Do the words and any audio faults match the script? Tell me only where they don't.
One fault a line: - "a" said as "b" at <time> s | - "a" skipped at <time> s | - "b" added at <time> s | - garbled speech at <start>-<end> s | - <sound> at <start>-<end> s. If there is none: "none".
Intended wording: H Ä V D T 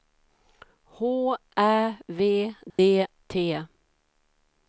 - dropout at 2.7-2.8 s